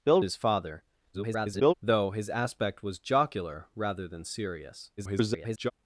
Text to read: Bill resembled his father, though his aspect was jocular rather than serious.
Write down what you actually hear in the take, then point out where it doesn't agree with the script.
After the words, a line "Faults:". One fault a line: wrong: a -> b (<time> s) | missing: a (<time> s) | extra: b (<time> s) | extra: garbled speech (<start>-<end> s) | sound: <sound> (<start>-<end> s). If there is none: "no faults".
Bill his father, [garbled] though his aspect was jocular rather than serious. [garbled]
Faults:
missing: resembled (0.2 s)
extra: garbled speech (1.1-1.7 s)
extra: garbled speech (5.0-5.7 s)